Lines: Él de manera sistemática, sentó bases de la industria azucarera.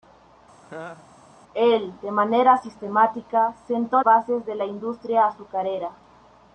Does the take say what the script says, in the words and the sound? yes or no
no